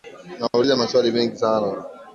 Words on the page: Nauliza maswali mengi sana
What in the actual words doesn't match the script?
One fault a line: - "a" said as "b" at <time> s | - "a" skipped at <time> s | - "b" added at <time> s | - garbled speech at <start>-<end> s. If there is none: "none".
none